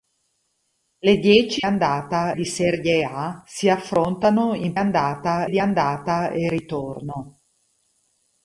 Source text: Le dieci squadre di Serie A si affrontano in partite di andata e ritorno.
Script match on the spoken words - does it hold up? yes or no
no